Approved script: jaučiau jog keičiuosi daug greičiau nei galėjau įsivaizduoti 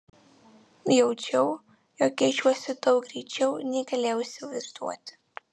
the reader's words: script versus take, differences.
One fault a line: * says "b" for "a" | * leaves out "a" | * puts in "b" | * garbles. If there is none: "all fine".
all fine